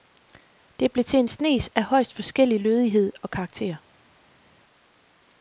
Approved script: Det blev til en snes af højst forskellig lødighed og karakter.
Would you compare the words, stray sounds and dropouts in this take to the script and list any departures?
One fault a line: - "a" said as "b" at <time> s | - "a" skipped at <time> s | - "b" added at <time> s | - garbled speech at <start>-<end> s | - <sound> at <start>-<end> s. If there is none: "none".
none